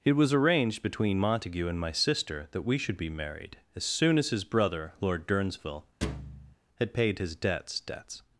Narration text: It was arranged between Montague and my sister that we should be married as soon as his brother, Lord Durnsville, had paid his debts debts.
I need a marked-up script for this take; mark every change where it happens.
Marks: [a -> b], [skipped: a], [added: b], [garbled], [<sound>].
It was arranged between Montague and my sister that we should be married as soon as his brother, Lord Durnsville, [thud] had paid his debts debts.